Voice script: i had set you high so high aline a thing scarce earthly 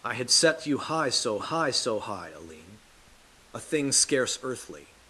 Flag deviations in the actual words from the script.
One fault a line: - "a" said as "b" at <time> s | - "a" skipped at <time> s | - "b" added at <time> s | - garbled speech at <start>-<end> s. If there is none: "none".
- "so high" added at 1.7 s